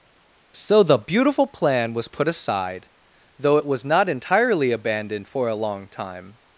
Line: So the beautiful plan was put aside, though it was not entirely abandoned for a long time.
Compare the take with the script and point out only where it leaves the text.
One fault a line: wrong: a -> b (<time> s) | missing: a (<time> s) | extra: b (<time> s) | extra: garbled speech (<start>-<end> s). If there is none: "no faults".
no faults